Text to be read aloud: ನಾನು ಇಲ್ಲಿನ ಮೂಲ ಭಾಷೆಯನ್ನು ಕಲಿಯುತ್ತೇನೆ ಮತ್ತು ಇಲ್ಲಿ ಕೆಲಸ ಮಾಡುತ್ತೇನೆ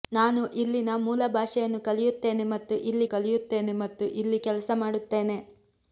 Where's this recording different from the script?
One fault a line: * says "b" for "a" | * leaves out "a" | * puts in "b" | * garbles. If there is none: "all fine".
* puts in "ಕಲಿಯುತ್ತೇನೆ ಮತ್ತು ಇಲ್ಲಿ"